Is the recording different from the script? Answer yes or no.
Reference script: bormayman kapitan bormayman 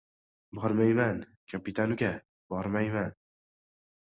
yes